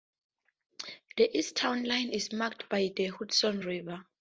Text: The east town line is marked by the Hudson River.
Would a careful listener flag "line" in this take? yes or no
no